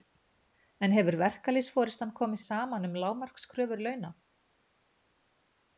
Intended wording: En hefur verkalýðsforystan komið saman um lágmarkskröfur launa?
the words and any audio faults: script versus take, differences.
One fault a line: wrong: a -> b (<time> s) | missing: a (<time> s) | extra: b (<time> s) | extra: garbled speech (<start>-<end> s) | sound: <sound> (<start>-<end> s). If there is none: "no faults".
no faults